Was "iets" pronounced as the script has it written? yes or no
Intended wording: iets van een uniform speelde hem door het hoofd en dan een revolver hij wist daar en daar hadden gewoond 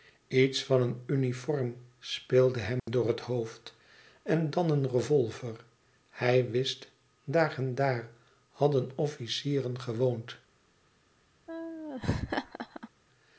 yes